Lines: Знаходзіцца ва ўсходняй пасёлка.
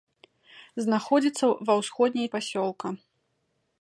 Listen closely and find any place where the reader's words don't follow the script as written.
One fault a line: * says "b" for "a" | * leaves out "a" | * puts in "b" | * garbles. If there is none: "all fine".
all fine